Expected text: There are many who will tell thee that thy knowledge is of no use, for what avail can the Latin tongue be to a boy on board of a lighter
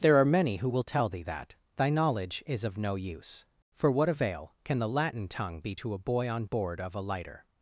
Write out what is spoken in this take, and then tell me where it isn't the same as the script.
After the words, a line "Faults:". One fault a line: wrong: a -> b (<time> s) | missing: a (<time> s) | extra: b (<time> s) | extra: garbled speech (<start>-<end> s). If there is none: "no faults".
There are many who will tell thee that thy knowledge is of no use, for what avail can the Latin tongue be to a boy on board of a lighter
Faults:
no faults